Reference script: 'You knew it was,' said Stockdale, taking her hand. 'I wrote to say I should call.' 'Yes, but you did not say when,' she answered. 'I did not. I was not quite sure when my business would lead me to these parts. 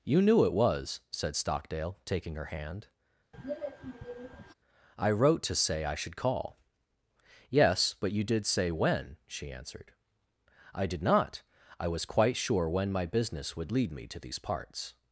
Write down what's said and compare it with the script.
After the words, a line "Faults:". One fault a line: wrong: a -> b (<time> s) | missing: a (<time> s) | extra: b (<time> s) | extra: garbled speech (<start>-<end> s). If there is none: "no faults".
'You knew it was,' said Stockdale, taking her hand. 'I wrote to say I should call.' 'Yes, but you did say when,' she answered. 'I did not. I was quite sure when my business would lead me to these parts.
Faults:
missing: not (8.5 s)
missing: not (12.1 s)